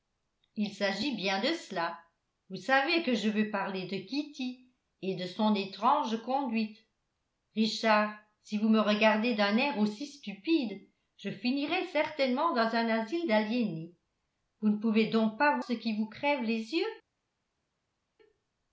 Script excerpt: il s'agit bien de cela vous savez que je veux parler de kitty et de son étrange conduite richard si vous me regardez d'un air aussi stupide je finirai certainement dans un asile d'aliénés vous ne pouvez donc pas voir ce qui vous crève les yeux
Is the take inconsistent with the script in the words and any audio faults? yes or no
yes